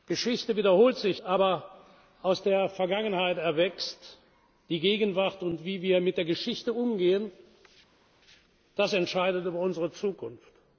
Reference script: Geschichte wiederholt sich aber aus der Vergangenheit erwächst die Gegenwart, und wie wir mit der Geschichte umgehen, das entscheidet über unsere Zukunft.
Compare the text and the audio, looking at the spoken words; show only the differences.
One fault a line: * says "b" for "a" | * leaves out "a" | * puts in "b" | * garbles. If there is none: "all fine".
all fine